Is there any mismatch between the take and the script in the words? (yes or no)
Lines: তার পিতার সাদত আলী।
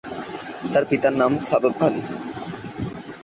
yes